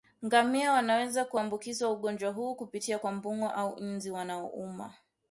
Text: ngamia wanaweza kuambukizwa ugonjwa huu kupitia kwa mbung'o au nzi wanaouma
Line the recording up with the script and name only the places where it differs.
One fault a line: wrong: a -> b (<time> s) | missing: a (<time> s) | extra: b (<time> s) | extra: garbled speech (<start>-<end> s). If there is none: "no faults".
no faults